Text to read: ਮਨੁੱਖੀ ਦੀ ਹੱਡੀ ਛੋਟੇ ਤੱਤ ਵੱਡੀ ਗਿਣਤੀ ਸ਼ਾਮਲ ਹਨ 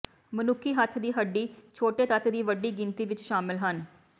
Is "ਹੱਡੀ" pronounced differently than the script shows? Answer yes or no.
no